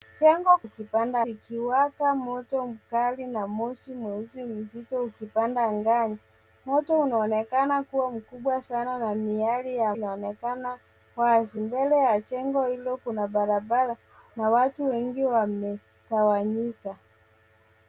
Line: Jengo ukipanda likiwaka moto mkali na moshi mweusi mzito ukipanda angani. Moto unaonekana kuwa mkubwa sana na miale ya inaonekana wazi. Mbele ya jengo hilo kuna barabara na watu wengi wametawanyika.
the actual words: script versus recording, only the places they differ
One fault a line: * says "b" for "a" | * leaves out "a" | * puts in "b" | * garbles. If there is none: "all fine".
all fine